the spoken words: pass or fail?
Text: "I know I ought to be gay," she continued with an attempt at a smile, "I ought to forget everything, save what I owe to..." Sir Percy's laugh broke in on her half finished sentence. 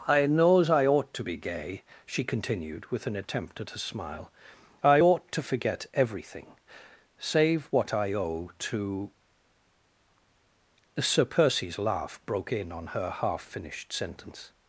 fail